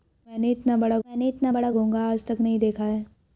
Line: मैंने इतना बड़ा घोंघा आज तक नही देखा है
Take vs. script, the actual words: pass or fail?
fail